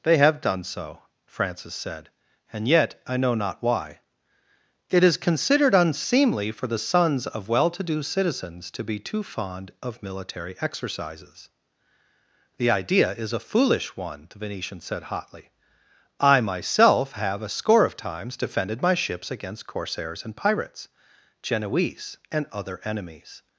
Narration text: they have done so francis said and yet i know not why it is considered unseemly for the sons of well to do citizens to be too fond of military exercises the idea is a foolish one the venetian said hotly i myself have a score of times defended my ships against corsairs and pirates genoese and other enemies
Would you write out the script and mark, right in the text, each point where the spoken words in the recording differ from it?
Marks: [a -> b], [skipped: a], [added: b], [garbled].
they have done so francis said and yet i know not why it is considered unseemly for the sons of well to do citizens to be too fond of military exercises the idea is a foolish one the venetian said hotly i myself have a score of times defended my ships against corsairs and pirates genoese and other enemies